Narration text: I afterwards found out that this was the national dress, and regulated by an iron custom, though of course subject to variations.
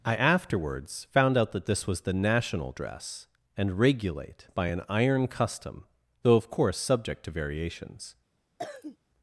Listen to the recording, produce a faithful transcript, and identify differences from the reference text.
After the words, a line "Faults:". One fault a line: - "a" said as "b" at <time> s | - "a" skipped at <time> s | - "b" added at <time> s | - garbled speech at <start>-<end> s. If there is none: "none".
I afterwards found out that this was the national dress, and regulate by an iron custom, though of course subject to variations.
Faults:
- "regulated" said as "regulate" at 3.8 s